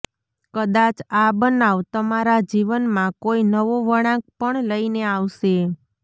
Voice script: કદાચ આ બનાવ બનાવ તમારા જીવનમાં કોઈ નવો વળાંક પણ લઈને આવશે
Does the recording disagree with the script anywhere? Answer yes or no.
yes